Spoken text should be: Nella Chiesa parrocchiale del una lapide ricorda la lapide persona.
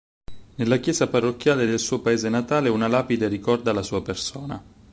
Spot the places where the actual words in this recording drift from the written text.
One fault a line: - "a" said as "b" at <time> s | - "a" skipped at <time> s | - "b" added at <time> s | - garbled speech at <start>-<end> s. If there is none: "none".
- "suo paese natale" added at 1.8 s
- "lapide" said as "sua" at 3.8 s